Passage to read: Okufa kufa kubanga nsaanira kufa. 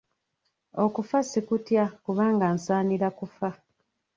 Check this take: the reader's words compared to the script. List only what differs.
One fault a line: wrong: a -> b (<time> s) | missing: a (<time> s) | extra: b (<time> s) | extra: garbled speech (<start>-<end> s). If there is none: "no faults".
wrong: kufa -> sikutya (1.3 s)